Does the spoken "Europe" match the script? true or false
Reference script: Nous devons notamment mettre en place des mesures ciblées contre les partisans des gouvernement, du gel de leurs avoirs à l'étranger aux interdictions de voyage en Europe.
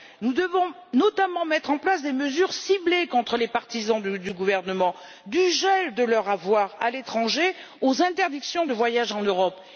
true